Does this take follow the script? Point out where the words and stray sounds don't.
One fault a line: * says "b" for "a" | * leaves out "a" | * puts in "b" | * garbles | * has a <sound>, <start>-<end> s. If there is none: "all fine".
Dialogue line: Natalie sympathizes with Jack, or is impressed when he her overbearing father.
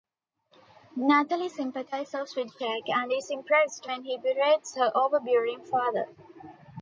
* says "and" for "or"
* puts in "berates"